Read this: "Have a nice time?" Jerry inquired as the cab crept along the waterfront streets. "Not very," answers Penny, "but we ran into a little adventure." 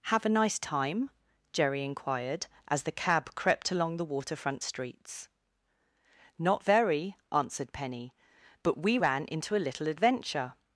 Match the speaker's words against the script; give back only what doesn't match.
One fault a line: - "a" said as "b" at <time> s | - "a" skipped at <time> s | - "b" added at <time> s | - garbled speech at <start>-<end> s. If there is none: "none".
- "answers" said as "answered" at 7.3 s